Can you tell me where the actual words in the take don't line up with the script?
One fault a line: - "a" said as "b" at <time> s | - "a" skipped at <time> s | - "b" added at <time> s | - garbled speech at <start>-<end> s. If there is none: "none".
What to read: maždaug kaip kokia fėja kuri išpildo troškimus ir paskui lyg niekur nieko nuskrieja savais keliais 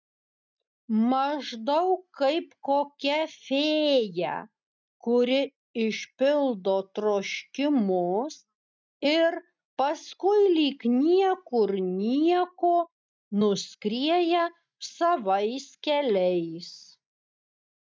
none